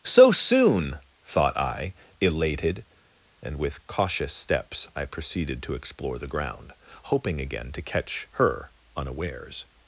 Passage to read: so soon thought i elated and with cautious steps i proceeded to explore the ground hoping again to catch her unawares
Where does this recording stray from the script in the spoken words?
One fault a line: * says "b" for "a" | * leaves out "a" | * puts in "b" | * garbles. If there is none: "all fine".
all fine